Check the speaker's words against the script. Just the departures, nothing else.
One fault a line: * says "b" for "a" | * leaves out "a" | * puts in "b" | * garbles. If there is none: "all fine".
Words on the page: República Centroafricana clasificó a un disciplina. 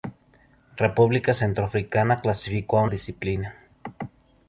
all fine